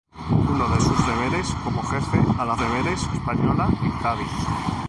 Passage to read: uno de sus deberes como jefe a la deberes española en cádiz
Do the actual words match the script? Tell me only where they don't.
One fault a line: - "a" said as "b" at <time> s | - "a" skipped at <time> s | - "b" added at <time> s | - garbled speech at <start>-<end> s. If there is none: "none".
none